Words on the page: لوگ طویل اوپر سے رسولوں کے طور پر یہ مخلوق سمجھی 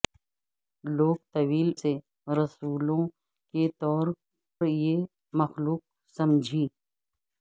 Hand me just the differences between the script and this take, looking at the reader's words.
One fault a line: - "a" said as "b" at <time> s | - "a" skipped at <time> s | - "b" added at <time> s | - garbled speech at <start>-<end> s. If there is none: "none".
- "اوپر" skipped at 1.7 s
- "پر" skipped at 4.1 s